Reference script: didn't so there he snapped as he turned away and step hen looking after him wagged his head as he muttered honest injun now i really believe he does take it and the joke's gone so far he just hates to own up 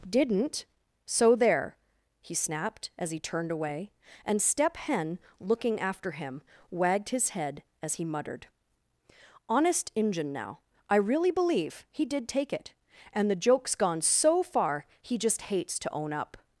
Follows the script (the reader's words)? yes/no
no